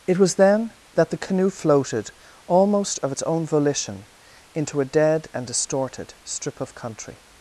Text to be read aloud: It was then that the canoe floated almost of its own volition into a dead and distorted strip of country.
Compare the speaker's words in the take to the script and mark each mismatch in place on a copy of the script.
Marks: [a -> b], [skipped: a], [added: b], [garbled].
It was then that the canoe floated almost of its own volition into a dead and distorted strip of country.